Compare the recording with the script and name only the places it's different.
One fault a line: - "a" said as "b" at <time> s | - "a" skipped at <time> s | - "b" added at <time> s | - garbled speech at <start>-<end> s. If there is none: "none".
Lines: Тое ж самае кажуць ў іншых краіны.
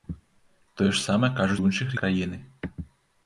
none